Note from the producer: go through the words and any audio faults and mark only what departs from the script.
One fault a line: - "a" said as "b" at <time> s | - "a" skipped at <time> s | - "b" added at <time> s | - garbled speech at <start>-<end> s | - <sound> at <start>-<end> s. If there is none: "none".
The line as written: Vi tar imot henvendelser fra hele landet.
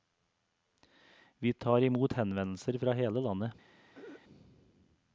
- throat clearing at 3.9-4.2 s